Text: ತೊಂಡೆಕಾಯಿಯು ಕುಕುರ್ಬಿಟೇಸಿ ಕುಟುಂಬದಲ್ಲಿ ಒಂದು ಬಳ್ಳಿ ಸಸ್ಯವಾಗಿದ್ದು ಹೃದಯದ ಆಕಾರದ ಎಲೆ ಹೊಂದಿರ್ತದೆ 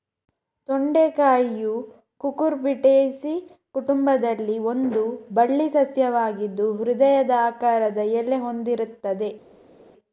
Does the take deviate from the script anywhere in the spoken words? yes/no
no